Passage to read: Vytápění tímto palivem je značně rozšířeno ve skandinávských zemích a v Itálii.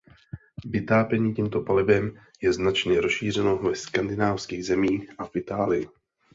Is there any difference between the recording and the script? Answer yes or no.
no